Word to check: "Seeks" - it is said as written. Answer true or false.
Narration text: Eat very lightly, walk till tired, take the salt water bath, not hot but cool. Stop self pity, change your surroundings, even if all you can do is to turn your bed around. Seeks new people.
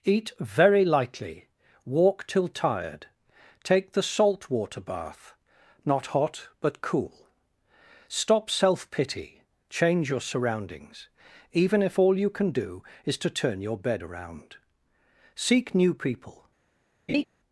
false